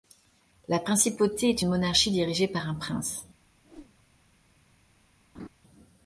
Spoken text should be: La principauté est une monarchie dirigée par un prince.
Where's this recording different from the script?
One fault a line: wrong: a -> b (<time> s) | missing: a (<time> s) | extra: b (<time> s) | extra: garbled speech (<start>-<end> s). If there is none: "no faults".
no faults